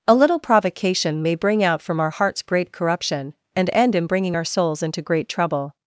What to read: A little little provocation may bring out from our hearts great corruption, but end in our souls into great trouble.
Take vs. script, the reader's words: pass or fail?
fail